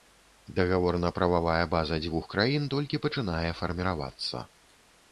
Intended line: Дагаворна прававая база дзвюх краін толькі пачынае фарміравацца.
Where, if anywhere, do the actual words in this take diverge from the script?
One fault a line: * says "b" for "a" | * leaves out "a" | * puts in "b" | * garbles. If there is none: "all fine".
all fine